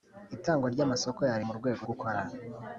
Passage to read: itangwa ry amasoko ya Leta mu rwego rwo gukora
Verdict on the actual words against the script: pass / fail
fail